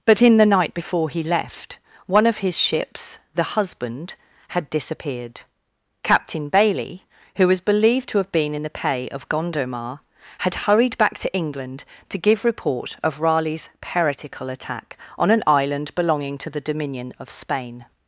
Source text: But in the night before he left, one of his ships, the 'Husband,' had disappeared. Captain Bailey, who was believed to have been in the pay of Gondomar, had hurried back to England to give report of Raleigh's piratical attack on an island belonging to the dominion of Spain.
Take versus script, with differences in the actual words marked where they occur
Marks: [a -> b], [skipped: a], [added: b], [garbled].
But in the night before he left, one of his ships, the 'Husband,' had disappeared. Captain Bailey, who was believed to have been in the pay of Gondomar, had hurried back to England to give report of Raleigh's piratical attack on an island belonging to the dominion of Spain.